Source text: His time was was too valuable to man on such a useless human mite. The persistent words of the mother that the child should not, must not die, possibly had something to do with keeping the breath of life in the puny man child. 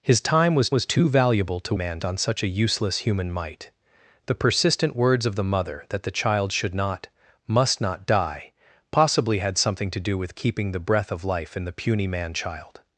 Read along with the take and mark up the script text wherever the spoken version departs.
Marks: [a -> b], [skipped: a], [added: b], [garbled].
His time was was too valuable to man on such a useless human mite. The persistent words of the mother that the child should not, must not die, possibly had something to do with keeping the breath of life in the puny man child.